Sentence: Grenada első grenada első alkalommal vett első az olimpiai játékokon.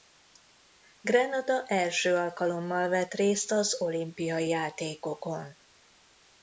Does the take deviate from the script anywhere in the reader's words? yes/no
yes